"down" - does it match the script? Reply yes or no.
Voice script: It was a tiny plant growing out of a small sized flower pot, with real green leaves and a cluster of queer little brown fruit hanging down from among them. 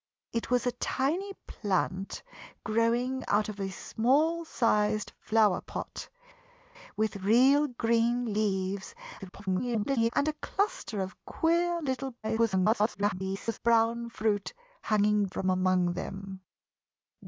no